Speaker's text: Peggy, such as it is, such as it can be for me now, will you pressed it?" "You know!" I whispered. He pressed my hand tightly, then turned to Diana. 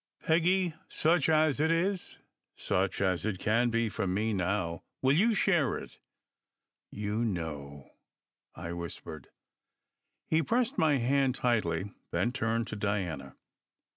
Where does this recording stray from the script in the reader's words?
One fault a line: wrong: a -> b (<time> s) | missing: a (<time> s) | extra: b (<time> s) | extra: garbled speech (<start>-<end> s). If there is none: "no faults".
wrong: pressed -> share (5.3 s)